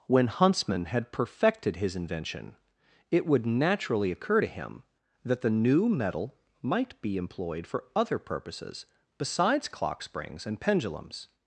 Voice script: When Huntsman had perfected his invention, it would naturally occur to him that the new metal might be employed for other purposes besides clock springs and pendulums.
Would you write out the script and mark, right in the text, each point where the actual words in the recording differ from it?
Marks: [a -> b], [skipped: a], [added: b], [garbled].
When Huntsman had perfected his invention, it would naturally occur to him that the new metal might be employed for other purposes besides clock springs and pendulums.